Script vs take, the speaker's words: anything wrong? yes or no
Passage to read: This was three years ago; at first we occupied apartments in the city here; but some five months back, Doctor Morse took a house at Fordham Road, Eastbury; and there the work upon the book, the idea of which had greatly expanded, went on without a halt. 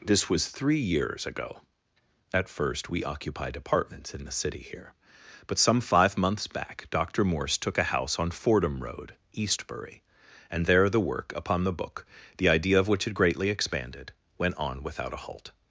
yes